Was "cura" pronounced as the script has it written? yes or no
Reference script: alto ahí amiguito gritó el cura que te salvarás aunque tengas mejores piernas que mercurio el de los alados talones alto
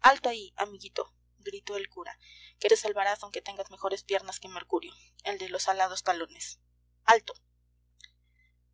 yes